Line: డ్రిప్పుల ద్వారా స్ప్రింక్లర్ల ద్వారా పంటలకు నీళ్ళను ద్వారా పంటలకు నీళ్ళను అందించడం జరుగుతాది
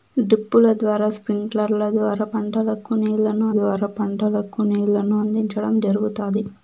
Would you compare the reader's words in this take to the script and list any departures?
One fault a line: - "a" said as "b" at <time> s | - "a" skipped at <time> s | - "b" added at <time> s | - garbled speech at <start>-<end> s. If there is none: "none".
none